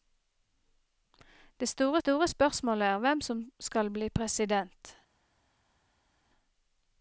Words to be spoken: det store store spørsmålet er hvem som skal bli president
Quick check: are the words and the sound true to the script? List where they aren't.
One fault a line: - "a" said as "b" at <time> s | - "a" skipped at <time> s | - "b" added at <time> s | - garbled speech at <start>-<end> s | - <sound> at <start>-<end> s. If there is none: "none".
none